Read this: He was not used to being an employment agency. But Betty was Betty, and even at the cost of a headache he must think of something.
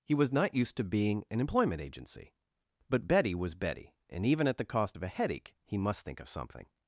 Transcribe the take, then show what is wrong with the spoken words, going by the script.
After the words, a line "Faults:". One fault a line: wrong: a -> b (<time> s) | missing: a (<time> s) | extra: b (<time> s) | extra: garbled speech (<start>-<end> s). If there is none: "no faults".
He was not used to being an employment agency. But Betty was Betty, and even at the cost of a headache he must think of something.
Faults:
no faults